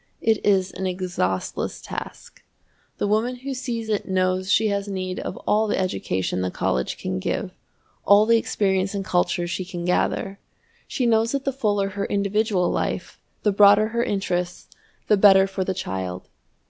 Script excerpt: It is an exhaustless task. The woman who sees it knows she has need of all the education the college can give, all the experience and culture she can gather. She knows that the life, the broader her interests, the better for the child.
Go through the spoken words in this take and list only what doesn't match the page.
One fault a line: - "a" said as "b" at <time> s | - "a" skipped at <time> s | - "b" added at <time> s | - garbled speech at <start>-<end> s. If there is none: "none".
- "fuller her individual" added at 11.5 s